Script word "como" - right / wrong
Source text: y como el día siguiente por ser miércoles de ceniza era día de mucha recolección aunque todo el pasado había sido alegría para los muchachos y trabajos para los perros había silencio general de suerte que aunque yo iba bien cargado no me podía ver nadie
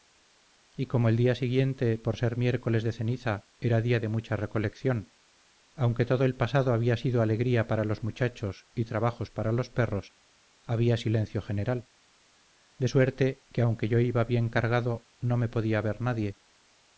right